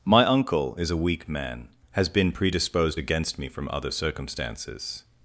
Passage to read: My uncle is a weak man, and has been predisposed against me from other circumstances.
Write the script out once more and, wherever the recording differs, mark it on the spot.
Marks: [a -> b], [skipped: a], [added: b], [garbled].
My uncle is a weak man, [skipped: and] has been predisposed against me from other circumstances.